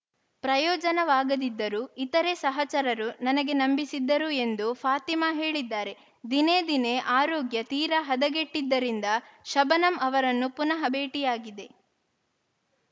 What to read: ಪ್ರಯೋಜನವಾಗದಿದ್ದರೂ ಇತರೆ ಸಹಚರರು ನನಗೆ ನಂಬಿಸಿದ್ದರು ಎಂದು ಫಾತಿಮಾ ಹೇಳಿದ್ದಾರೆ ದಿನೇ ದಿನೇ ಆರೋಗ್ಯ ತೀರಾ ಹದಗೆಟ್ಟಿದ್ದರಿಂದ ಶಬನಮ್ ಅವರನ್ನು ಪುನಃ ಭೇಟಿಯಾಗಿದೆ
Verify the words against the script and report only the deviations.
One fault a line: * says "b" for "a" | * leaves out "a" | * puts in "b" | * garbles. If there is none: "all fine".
all fine